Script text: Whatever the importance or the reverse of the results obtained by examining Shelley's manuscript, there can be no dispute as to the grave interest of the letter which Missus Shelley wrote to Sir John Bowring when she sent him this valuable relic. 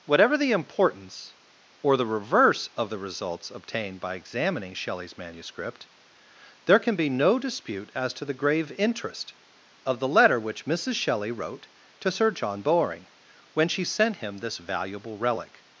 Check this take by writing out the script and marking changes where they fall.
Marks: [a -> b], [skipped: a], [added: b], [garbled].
Whatever the importance or the reverse of the results obtained by examining Shelley's manuscript, there can be no dispute as to the grave interest of the letter which Missus Shelley wrote to Sir John Bowring when she sent him this valuable relic.